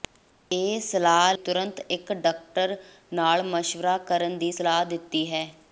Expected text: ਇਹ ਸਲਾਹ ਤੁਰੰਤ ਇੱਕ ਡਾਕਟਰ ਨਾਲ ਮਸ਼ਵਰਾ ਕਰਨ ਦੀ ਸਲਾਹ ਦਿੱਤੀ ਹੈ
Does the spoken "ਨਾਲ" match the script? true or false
true